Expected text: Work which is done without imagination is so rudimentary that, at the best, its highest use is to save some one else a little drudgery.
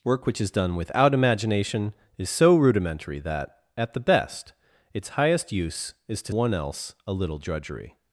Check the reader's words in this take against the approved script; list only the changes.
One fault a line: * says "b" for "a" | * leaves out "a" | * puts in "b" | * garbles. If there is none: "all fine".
* leaves out "save some"